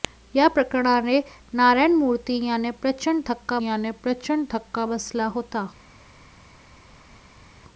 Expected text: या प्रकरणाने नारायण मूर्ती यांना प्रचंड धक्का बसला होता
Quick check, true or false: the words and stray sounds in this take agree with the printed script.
false